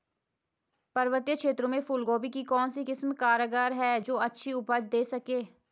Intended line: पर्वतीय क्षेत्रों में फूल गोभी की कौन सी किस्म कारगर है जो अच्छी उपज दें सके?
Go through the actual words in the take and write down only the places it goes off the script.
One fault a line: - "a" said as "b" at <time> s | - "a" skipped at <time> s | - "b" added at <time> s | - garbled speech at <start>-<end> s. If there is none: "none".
none